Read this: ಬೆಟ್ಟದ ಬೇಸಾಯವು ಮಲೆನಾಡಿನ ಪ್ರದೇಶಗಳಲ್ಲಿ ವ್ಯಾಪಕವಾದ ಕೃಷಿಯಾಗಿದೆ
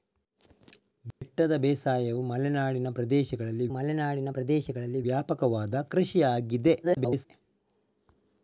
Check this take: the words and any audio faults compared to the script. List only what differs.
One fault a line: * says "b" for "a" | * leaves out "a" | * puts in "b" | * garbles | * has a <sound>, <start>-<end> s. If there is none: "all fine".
* has a dropout, 1.1-1.2 s
* puts in "ಮಲೆನಾಡಿನ ಪ್ರದೇಶಗಳಲ್ಲಿ"
* garbles